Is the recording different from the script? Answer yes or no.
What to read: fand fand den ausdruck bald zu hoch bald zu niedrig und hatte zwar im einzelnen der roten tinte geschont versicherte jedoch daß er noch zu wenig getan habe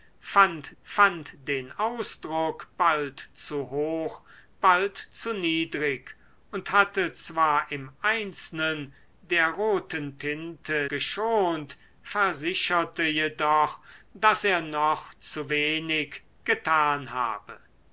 no